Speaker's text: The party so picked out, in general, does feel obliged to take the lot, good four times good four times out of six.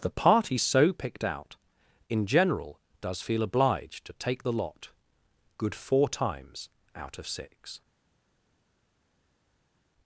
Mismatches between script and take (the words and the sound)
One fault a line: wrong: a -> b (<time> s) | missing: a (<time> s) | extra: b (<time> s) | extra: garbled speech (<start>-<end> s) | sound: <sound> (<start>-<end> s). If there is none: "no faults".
missing: good four times (6.7 s)